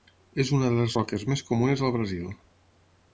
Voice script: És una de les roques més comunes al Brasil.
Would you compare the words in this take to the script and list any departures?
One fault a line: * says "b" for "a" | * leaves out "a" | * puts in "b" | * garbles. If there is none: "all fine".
all fine